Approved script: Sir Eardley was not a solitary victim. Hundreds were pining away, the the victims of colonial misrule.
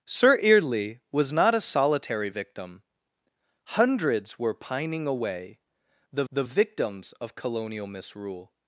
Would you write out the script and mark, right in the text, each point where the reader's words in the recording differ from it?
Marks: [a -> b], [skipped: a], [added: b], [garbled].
Sir Eardley was not a solitary victim. Hundreds were pining away, the the victims of colonial misrule.